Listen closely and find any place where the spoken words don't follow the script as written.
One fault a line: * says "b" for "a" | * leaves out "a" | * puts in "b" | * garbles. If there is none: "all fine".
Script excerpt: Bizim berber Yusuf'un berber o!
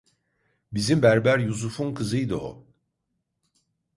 * says "kızıydı" for "berber"